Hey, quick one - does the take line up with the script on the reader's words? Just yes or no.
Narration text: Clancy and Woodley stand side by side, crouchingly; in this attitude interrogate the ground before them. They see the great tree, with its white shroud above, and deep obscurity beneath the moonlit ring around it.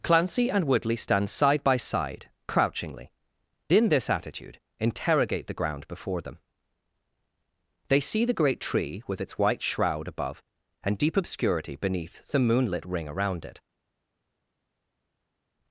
yes